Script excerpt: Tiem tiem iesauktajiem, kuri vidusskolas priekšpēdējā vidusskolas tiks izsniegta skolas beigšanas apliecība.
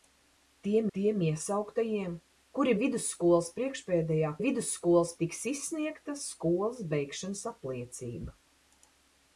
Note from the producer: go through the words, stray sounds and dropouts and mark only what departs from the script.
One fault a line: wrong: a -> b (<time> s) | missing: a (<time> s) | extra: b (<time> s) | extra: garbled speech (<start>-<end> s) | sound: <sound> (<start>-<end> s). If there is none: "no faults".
no faults